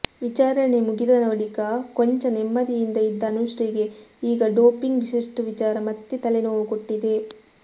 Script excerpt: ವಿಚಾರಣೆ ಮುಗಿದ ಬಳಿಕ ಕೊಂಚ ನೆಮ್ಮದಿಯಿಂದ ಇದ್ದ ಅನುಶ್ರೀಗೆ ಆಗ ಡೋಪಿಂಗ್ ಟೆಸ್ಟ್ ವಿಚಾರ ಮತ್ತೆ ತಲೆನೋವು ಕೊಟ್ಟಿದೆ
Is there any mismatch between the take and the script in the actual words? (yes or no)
yes